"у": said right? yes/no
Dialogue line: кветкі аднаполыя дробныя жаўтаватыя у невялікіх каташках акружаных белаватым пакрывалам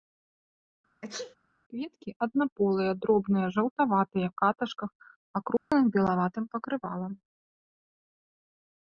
no